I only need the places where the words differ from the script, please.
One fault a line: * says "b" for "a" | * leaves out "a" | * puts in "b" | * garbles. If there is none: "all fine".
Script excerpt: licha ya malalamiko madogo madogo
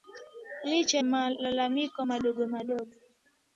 * leaves out "ya"